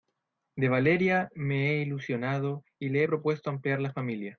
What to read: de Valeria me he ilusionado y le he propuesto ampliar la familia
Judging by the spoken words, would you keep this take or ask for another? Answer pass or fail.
pass